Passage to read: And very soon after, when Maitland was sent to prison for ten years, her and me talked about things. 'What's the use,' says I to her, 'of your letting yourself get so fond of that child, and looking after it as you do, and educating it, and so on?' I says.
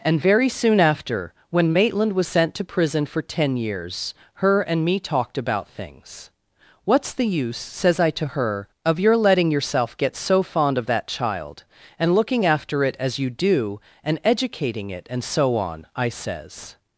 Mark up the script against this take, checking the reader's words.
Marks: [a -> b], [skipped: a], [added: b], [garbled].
And very soon after, when Maitland was sent to prison for ten years, her and me talked about things. 'What's the use,' says I to her, 'of your letting yourself get so fond of that child, and looking after it as you do, and educating it, and so on?' I says.